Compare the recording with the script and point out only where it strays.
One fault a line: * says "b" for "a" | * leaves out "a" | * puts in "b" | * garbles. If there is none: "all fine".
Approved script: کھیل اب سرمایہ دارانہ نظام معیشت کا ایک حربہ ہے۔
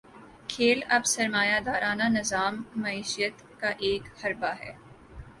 all fine